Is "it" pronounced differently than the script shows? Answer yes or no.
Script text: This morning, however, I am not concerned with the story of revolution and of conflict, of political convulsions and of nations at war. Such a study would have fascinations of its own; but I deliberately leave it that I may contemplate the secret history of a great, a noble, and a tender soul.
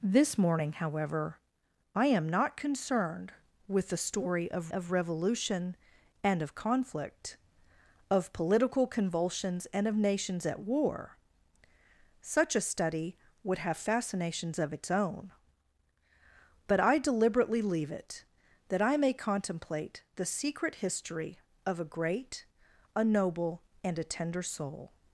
no